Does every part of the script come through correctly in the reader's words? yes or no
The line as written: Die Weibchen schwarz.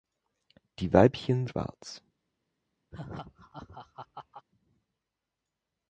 yes